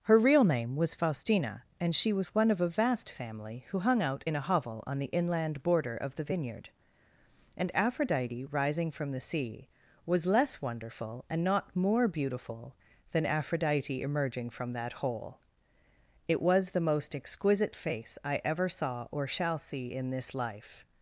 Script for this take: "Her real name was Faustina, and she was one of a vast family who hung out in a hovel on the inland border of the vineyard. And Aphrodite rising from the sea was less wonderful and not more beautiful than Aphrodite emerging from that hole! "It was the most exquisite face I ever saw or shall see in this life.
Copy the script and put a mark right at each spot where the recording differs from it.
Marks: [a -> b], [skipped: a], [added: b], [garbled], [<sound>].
"Her real name was Faustina, and she was one of a vast family who hung out in a hovel on the inland border of the vineyard. And Aphrodite rising from the sea was less wonderful and not more beautiful than Aphrodite emerging from that hole! "It was the most exquisite face I ever saw or shall see in this life.